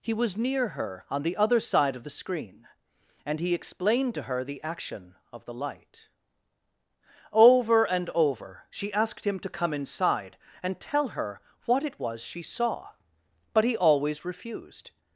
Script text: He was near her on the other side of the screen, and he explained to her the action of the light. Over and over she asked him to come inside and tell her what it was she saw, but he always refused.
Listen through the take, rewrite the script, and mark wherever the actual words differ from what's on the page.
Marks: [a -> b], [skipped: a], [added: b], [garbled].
He was near her on the other side of the screen, and he explained to her the action of the light. Over and over she asked him to come inside and tell her what it was she saw, but he always refused.